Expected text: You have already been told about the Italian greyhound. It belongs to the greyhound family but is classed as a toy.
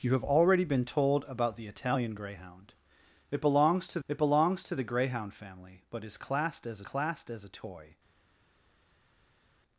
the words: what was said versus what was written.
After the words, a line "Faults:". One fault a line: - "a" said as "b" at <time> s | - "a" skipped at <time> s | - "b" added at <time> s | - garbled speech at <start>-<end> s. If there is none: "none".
You have already been told about the Italian greyhound. It belongs to it belongs to the greyhound family but is classed as classed as a toy.
Faults:
- "it belongs to" added at 4.1 s
- "classed as" added at 6.8 s